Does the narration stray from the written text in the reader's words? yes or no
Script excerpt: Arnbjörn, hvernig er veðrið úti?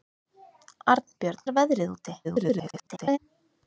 yes